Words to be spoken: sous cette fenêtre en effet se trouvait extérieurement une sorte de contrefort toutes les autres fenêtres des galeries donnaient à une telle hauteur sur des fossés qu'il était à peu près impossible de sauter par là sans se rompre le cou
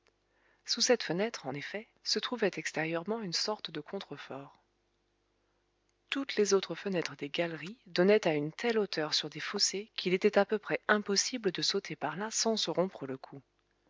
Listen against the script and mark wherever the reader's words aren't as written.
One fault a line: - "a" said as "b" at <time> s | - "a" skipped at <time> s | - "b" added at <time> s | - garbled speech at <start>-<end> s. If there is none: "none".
none